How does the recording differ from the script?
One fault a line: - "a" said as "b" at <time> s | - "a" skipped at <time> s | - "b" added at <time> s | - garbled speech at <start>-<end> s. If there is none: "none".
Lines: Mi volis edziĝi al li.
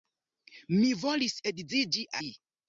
- "al" skipped at 2.1 s